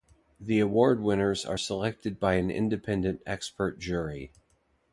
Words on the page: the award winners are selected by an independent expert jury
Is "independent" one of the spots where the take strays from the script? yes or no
no